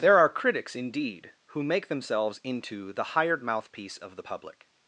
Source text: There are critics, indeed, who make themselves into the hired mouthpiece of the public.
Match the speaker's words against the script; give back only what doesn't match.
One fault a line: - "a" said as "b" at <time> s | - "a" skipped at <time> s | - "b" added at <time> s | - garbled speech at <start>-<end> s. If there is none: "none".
none